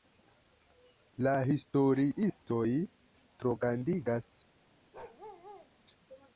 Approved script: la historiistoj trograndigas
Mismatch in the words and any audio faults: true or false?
true